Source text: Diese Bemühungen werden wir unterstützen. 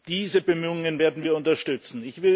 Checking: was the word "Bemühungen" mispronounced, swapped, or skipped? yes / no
no